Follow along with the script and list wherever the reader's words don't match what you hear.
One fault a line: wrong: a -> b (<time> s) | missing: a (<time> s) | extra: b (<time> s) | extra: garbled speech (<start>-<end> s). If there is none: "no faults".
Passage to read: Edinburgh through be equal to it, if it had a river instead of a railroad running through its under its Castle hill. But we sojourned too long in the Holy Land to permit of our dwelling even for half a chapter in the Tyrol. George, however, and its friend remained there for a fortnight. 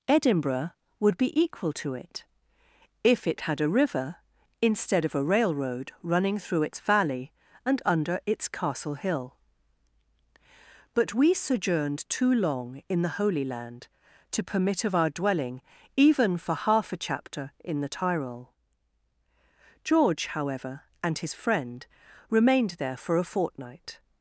wrong: through -> would (1.0 s)
extra: valley and (6.8 s)
wrong: its -> his (21.2 s)